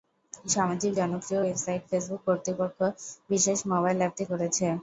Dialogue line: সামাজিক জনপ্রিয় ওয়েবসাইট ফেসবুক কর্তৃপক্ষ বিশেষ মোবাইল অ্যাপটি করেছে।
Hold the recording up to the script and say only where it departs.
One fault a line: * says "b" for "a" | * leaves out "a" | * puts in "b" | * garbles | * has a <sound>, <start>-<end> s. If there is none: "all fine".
all fine